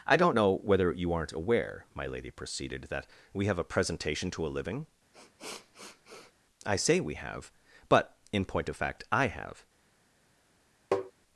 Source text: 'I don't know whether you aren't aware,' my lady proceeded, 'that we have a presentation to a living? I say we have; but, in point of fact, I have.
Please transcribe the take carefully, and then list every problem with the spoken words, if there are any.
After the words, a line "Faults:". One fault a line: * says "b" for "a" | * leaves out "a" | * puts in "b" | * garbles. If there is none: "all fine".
'I don't know whether you aren't aware,' my lady proceeded, 'that we have a presentation to a living? I say we have; but, in point of fact, I have.
Faults:
all fine